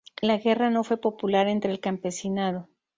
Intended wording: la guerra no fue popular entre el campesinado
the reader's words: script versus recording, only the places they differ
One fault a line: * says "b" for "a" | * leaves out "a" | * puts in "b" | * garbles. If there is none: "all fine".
all fine